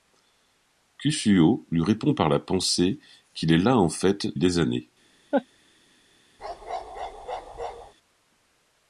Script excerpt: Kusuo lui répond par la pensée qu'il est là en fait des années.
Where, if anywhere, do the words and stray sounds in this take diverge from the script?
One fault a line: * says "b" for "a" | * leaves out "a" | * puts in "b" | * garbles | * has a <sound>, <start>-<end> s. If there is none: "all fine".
* has a laugh, 5.3-5.5 s
* has a bark, 6.4-7.9 s